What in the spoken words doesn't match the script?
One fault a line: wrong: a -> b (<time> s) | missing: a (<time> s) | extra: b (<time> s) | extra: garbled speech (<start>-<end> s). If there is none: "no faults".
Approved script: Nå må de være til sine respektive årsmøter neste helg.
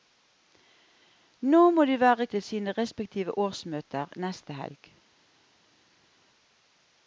no faults